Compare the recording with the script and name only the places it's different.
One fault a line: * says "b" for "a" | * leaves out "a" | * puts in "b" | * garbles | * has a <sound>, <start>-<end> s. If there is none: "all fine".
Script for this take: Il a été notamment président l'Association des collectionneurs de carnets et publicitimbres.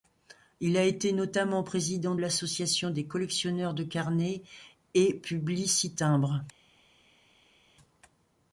all fine